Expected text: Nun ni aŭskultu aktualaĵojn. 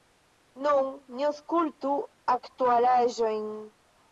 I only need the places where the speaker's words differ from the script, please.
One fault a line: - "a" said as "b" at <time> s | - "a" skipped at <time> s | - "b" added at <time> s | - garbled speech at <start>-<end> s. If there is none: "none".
none